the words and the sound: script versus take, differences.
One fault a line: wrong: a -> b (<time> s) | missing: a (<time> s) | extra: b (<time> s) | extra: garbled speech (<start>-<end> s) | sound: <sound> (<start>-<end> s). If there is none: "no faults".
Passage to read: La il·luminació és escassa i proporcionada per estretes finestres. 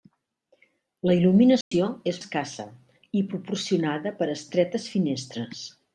sound: dropout (1.6-1.7 s)